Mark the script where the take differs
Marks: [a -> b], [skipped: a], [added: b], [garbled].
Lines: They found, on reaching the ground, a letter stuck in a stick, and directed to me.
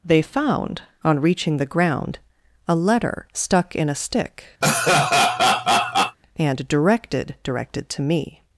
They found, on reaching the ground, a letter stuck in a stick, and directed [added: directed] to me.